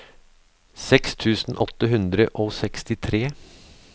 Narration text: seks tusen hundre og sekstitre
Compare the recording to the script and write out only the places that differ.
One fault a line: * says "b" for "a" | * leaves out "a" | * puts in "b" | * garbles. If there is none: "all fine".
* puts in "åtte"